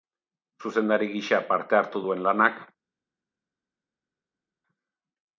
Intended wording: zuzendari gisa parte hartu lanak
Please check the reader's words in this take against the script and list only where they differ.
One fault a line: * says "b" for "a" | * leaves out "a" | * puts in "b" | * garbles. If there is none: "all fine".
* puts in "duen"